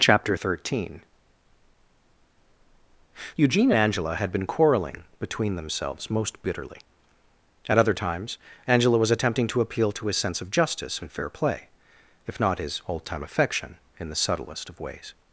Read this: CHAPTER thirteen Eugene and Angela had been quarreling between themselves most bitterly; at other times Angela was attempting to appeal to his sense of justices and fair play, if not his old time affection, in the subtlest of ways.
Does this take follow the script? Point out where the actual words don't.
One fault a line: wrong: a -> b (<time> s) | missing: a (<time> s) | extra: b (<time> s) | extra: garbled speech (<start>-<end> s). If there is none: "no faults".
wrong: justices -> justice (10.5 s)